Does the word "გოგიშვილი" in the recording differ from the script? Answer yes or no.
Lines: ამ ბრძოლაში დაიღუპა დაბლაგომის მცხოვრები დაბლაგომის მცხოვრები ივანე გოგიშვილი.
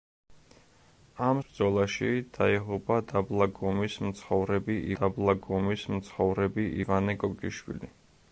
no